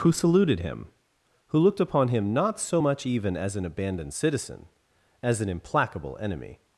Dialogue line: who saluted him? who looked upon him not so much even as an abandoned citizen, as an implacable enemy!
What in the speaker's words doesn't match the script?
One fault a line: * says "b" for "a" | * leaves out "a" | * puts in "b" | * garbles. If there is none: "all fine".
all fine